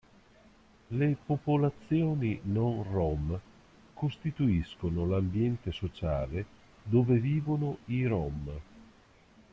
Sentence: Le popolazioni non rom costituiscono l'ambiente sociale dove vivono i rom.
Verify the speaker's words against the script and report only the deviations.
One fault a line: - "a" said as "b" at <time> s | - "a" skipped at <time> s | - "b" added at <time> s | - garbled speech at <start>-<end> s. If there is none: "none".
none